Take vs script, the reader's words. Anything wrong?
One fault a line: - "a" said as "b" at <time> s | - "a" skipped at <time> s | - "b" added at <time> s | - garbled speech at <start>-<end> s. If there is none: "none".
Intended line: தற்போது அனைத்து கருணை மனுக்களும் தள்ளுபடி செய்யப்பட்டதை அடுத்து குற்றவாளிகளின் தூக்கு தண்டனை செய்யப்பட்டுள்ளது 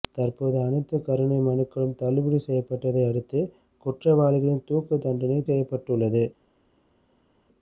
none